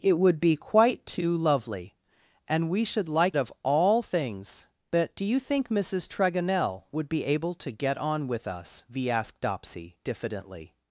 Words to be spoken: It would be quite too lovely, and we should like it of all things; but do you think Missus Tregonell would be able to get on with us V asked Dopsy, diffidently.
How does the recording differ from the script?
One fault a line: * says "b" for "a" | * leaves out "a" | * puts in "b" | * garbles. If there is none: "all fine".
* leaves out "it"